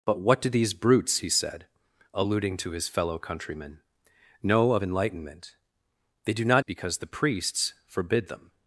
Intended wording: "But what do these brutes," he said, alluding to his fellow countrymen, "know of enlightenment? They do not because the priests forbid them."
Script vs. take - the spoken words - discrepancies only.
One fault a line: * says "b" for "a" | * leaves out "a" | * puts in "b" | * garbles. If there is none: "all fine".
all fine